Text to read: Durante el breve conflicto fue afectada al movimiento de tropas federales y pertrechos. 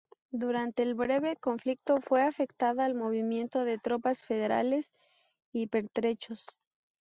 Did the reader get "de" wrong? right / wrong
right